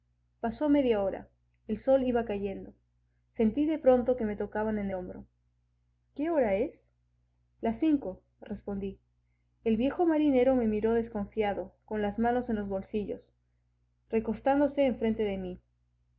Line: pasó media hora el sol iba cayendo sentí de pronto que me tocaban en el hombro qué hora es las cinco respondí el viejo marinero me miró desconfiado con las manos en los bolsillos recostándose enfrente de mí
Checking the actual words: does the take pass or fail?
fail